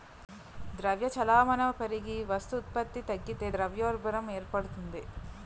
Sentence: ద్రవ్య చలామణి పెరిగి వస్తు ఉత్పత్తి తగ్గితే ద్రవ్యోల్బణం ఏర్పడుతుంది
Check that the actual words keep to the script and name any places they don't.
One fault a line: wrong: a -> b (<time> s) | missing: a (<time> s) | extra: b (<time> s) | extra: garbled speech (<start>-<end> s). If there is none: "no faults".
no faults